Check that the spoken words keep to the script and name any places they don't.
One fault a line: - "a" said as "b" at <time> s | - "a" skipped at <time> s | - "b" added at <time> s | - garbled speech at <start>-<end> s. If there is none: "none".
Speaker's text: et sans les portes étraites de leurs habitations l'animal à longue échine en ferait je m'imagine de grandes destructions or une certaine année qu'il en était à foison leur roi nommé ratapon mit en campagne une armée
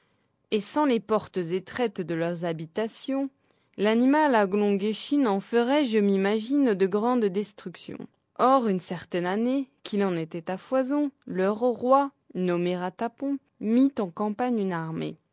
none